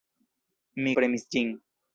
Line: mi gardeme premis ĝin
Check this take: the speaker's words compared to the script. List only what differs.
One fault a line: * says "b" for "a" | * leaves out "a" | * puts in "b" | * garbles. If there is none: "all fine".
* leaves out "gardeme"